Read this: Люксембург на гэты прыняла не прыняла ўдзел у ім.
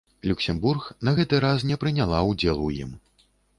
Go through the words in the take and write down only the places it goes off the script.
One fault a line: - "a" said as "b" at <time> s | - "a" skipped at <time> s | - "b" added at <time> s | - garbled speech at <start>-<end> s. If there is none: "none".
- "прыняла" said as "раз" at 1.5 s